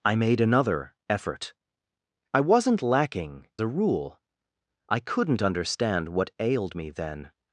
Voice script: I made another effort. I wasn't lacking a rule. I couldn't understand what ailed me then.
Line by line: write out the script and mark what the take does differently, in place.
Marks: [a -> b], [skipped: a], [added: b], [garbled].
I made another effort. I wasn't lacking a rule. I couldn't understand what ailed me then.